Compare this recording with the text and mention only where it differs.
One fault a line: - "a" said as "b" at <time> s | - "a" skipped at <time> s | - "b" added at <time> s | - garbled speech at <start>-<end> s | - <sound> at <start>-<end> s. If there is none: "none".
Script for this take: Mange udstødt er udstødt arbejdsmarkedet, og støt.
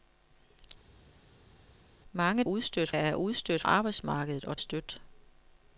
none